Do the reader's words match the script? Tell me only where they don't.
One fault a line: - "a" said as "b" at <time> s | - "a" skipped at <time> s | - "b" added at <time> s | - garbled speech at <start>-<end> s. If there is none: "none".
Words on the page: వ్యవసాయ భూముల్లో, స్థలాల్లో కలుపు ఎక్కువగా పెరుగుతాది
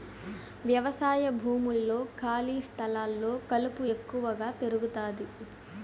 - "ఖాళీ" added at 2.2 s